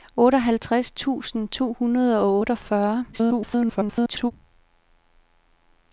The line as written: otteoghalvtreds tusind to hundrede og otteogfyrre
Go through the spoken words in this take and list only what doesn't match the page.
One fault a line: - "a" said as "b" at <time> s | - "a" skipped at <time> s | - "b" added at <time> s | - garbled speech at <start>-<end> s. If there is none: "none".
- garbled speech at 3.1-4.3 s